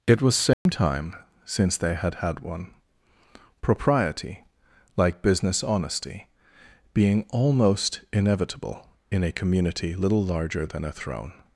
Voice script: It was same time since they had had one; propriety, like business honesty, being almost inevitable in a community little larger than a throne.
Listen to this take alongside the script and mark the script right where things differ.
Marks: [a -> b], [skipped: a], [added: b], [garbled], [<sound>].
It was same [dropout] time since they had had one; propriety, like business honesty, being almost inevitable in a community little larger than a throne.